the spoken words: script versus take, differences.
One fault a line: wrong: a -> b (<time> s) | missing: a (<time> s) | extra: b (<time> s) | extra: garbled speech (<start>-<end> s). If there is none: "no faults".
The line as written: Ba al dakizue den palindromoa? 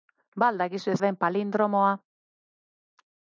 no faults